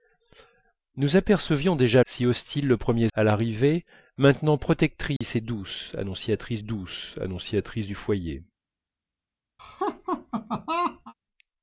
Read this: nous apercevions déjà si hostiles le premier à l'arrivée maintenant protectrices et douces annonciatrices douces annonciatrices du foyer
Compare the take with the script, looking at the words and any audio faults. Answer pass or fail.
fail